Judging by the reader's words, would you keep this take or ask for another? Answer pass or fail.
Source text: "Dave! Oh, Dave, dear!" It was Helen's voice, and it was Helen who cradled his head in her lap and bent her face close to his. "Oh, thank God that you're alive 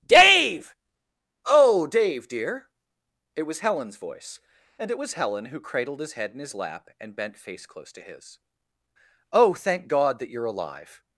fail